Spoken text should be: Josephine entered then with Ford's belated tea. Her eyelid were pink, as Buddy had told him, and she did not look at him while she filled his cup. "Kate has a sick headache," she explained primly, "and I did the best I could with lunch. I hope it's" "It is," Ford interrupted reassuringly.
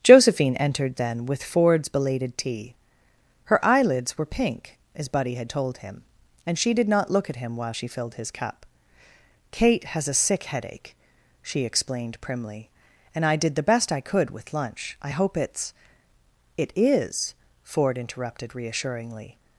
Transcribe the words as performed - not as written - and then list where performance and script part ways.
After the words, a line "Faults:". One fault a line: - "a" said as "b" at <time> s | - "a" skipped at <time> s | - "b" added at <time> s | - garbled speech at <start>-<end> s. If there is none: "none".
Josephine entered then with Ford's belated tea. Her eyelids were pink, as Buddy had told him, and she did not look at him while she filled his cup. "Kate has a sick headache," she explained primly, "and I did the best I could with lunch. I hope it's" "It is," Ford interrupted reassuringly.
Faults:
- "eyelid" said as "eyelids" at 3.6 s